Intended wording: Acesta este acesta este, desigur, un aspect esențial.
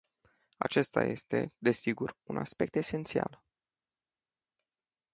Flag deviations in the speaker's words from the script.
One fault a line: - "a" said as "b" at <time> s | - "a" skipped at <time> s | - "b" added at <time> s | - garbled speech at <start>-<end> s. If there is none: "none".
- "acesta este" skipped at 1.6 s